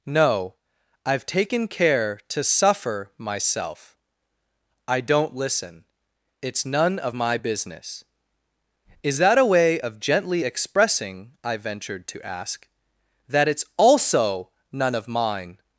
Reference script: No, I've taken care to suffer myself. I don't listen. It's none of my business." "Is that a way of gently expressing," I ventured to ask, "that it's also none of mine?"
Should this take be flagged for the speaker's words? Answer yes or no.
no